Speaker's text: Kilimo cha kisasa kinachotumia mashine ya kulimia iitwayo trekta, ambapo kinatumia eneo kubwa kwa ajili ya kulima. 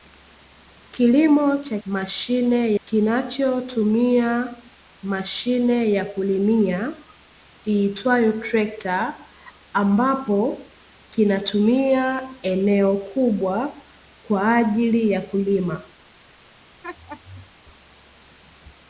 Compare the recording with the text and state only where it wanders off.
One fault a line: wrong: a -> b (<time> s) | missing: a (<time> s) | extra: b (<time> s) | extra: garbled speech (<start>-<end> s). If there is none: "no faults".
wrong: kisasa -> mashine (1.9 s)